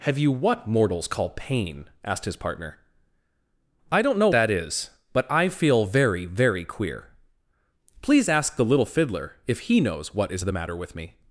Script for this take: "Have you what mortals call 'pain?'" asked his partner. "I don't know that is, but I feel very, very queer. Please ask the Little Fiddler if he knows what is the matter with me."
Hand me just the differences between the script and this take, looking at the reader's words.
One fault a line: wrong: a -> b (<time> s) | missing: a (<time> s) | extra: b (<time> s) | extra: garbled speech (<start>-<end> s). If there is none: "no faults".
no faults